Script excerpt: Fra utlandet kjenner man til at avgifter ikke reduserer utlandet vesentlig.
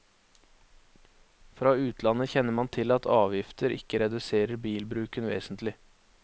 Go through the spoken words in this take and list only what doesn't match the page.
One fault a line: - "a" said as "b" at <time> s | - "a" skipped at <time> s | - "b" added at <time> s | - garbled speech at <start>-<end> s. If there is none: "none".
- "utlandet" said as "bilbruken" at 4.7 s